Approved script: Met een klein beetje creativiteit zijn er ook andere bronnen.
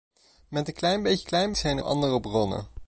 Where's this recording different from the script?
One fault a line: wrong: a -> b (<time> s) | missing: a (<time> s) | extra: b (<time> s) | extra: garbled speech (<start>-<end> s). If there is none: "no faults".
wrong: creativiteit -> klein (1.2 s)
missing: ook (1.8 s)